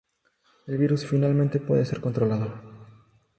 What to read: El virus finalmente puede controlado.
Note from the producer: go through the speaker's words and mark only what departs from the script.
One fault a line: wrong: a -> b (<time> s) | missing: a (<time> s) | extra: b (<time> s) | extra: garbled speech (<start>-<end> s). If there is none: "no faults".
extra: ser (1.8 s)